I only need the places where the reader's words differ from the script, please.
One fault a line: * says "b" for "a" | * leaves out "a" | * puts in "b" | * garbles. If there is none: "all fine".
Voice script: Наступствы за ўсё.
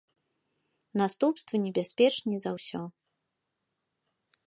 * puts in "небяспечней"